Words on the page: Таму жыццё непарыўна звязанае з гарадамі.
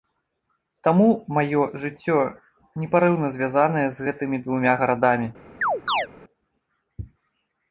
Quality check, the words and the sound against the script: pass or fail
fail